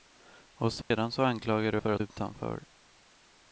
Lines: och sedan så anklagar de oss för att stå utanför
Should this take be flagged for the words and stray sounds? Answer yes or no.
yes